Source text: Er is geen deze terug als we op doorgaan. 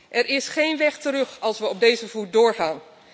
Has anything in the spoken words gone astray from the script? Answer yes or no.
yes